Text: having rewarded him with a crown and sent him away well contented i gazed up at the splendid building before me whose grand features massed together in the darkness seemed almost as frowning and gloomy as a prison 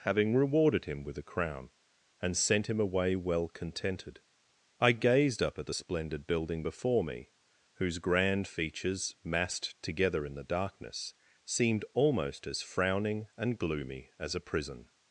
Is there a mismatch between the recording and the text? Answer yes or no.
no